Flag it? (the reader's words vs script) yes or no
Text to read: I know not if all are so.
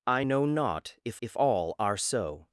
yes